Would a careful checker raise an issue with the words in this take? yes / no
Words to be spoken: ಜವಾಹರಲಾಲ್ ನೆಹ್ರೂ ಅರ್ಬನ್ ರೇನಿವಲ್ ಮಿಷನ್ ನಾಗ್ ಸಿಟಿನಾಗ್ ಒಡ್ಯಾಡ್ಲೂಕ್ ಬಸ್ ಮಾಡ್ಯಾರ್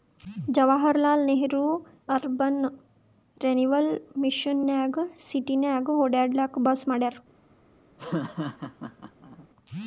no